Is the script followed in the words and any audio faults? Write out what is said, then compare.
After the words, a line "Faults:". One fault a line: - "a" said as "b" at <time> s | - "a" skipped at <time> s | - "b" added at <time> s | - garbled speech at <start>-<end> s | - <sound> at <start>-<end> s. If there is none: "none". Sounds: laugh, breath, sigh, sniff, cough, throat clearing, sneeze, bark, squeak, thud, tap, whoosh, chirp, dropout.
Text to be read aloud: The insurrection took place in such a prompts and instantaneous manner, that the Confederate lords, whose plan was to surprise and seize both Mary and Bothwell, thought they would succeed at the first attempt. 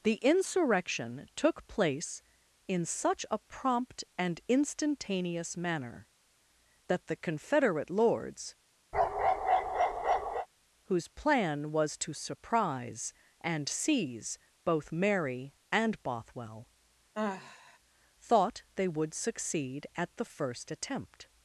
The insurrection took place in such a prompt and instantaneous manner, that the Confederate lords, whose plan was to surprise and seize both Mary and Bothwell, thought they would succeed at the first attempt.
Faults:
- "prompts" said as "prompt" at 3.4 s
- bark at 8.9-10.5 s
- sigh at 17.1-17.8 s